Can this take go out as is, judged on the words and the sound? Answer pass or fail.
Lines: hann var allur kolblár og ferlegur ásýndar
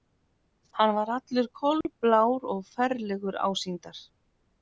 fail